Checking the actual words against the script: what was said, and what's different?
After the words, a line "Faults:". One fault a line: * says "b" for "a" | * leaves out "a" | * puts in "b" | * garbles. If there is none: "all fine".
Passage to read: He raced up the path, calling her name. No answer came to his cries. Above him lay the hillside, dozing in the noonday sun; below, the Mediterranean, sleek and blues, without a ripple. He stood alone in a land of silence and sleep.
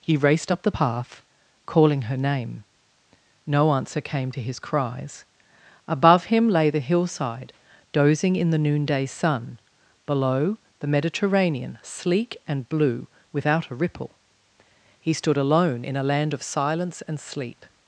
He raced up the path, calling her name. No answer came to his cries. Above him lay the hillside, dozing in the noonday sun; below, the Mediterranean, sleek and blue, without a ripple. He stood alone in a land of silence and sleep.
Faults:
* says "blue" for "blues"